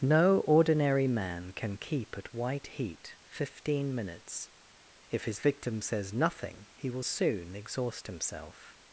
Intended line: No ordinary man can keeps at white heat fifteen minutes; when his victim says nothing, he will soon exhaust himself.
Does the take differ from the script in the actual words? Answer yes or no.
yes